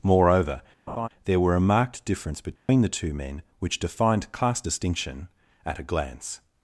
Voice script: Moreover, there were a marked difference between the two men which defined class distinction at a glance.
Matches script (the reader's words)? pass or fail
pass